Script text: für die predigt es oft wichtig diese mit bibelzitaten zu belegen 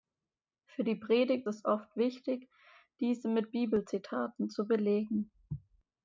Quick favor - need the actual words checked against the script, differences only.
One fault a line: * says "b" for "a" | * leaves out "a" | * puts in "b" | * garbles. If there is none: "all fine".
all fine